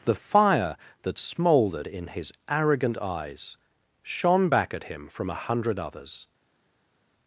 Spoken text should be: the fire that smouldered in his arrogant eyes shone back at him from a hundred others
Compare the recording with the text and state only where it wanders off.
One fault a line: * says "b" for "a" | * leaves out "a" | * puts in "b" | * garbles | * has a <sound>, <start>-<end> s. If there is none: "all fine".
all fine